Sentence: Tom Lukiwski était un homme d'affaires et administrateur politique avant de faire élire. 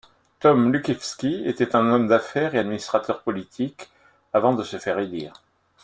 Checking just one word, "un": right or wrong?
right